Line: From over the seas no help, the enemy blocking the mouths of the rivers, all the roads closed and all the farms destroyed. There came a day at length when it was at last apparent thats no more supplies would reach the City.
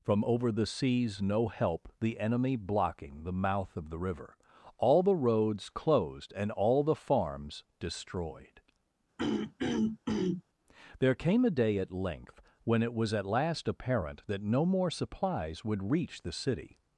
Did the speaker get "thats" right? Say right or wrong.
wrong